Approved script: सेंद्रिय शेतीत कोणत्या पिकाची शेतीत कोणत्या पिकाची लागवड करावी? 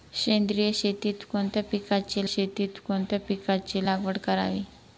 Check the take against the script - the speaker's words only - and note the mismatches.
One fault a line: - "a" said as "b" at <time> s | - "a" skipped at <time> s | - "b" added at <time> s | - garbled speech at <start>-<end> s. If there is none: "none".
none